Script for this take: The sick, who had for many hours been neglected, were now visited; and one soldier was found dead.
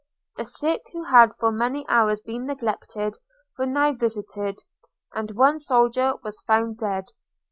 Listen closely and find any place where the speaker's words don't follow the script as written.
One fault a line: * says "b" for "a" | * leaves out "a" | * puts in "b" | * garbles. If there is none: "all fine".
all fine